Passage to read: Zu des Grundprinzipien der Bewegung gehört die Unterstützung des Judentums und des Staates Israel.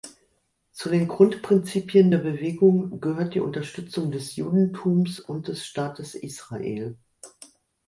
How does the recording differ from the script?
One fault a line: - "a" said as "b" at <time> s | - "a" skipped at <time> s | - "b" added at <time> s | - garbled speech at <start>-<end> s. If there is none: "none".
- "des" said as "den" at 0.9 s